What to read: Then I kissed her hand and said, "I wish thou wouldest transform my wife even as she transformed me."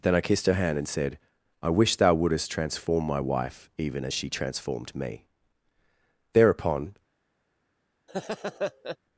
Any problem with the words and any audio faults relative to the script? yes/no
yes